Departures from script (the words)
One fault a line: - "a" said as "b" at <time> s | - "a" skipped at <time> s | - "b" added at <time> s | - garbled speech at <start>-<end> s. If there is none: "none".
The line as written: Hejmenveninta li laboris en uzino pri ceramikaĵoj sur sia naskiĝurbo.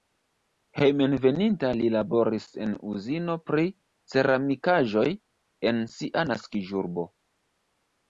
- "sur" said as "en" at 5.7 s